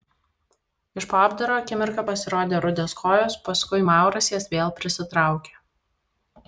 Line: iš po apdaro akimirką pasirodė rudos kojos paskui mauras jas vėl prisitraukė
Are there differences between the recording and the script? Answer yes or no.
no